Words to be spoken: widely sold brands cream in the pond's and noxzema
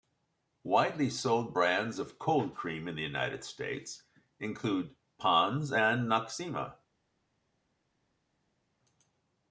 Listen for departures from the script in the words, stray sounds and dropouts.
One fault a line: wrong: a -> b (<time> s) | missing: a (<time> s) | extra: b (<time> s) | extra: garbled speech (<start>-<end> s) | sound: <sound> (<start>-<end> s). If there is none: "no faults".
extra: of cold (2.0 s)
extra: united states include (3.0 s)